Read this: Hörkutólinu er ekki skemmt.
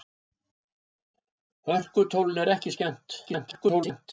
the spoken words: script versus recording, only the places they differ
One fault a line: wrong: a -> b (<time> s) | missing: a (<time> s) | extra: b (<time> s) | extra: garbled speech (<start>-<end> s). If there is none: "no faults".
extra: garbled speech (3.3-4.1 s)